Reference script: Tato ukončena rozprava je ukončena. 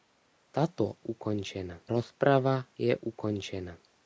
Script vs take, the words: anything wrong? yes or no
no